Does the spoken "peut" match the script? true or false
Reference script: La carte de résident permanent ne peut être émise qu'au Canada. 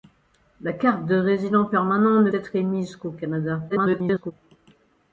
false